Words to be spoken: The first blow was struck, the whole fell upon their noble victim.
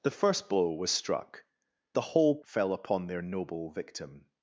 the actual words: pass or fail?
pass